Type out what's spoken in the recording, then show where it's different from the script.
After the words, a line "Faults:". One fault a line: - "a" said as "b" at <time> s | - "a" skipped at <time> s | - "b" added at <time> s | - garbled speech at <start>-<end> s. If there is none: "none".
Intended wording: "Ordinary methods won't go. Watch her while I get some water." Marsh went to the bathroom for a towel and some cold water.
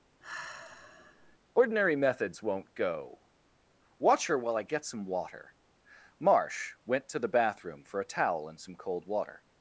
"Ordinary methods won't go. Watch her while I get some water." Marsh went to the bathroom for a towel and some cold water.
Faults:
none